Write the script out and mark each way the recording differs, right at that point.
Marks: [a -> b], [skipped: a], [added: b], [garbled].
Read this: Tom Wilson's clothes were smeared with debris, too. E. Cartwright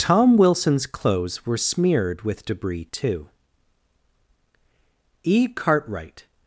Tom Wilson's clothes were smeared with debris, too. E. Cartwright